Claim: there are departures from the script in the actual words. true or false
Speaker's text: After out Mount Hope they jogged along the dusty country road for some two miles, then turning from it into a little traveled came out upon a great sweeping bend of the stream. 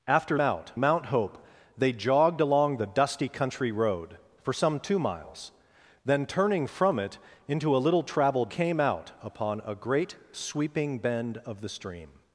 false